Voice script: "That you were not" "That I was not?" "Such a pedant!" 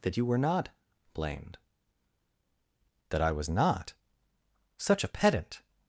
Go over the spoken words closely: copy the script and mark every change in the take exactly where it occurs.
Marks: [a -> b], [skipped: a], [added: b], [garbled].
"That you were not" [added: blamed] "That I was not?" "Such a pedant!"